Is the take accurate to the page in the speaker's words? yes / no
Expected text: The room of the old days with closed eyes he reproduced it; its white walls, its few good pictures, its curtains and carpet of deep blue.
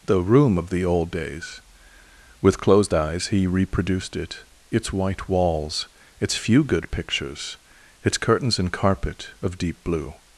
yes